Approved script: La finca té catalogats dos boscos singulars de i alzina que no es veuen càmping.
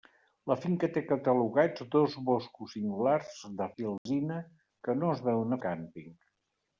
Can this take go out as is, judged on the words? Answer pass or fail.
pass